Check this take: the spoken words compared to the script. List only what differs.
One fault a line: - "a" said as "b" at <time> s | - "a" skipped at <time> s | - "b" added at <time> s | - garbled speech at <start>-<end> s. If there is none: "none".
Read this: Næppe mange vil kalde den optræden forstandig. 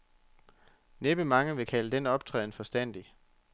none